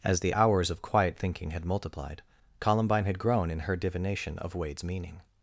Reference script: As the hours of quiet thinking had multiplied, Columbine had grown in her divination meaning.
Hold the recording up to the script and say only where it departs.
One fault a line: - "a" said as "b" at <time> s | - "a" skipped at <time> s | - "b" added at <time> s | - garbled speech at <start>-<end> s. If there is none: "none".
- "of Wade's" added at 4.4 s